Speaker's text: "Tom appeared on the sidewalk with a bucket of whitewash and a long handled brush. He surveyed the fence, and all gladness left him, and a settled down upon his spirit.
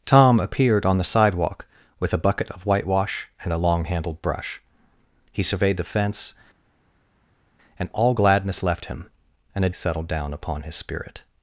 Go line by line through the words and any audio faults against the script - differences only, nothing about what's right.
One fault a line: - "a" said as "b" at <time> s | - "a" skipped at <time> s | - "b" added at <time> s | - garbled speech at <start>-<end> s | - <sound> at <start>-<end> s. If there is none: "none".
none